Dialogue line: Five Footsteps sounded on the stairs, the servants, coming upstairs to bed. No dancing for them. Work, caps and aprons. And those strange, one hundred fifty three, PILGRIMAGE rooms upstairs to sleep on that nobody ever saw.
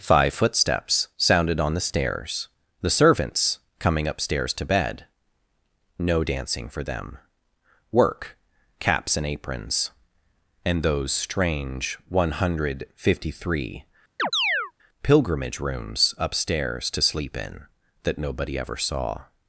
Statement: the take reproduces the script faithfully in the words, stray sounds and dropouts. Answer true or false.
false